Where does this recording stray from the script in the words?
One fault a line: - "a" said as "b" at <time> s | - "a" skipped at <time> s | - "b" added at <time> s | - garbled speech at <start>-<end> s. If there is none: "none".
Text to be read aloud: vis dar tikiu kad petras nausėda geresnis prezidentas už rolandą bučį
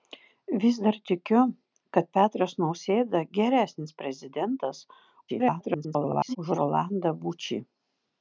- garbled speech at 5.3-6.4 s